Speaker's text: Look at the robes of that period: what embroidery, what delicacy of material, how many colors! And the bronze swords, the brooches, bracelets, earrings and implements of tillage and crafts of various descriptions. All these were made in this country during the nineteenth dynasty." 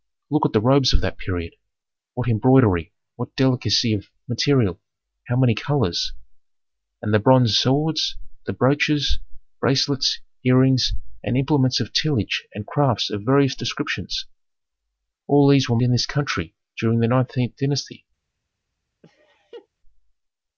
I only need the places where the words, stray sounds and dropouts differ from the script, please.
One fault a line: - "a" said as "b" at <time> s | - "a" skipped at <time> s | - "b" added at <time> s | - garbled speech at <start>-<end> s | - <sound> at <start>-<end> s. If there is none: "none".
- "made" skipped at 15.8 s
- laugh at 19.0-19.7 s